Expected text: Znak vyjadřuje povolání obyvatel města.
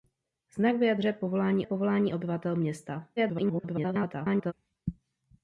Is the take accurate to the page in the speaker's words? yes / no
no